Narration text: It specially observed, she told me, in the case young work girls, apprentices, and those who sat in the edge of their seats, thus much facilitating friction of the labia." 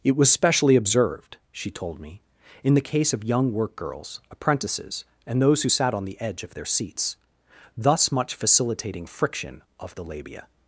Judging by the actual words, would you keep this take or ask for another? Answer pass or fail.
fail